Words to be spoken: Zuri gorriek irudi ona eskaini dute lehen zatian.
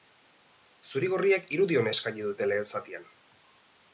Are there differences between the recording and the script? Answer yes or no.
no